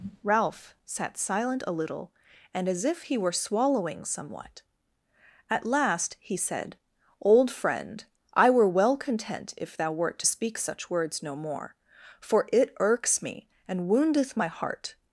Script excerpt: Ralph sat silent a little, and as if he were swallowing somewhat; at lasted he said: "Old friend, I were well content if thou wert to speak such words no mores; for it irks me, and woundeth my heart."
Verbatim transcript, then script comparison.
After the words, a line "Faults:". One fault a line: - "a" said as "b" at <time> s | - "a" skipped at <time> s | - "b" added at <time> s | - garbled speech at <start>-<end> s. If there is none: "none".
Ralph sat silent a little, and as if he were swallowing somewhat; at last he said: "Old friend, I were well content if thou wert to speak such words no more; for it irks me, and woundeth my heart."
Faults:
- "lasted" said as "last" at 5.6 s
- "mores" said as "more" at 11.3 s